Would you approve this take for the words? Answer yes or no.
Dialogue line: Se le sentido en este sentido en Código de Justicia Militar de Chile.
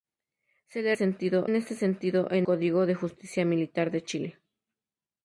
yes